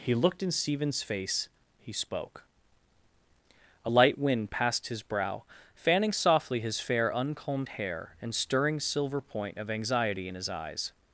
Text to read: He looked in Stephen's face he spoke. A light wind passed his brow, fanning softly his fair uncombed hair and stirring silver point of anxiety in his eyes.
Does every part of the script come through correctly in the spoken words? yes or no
yes